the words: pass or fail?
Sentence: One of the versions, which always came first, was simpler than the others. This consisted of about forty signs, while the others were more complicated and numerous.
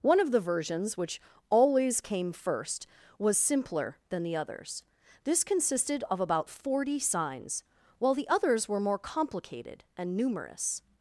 pass